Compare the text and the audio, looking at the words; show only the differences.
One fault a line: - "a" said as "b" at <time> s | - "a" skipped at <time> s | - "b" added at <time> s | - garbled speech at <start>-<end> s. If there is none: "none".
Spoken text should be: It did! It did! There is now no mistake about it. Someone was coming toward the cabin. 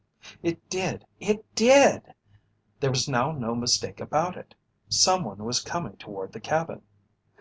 - "is" said as "was" at 2.9 s